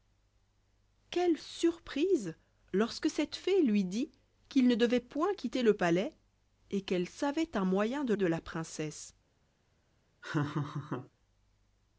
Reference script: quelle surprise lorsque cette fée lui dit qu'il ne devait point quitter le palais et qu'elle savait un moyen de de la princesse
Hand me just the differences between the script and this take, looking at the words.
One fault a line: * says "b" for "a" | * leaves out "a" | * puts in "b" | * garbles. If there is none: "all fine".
all fine